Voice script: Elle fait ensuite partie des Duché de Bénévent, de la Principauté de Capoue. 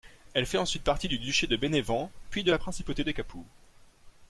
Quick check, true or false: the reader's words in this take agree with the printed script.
false